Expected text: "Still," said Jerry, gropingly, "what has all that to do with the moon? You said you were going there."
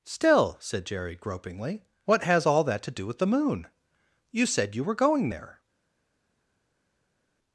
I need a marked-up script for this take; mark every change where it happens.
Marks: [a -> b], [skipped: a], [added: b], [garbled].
"Still," said Jerry, gropingly, "what has all that to do with the moon? You said you were going there."